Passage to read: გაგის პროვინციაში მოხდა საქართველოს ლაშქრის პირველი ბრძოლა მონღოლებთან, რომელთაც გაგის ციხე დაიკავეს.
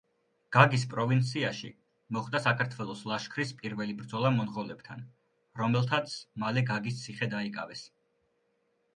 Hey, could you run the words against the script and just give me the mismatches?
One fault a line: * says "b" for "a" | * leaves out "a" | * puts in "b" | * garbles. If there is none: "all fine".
* puts in "მალე"